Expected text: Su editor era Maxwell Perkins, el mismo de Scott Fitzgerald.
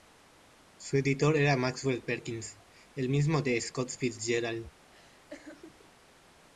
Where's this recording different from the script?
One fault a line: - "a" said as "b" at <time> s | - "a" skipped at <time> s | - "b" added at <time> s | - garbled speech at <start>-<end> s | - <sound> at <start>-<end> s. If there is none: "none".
- laugh at 4.9-5.9 s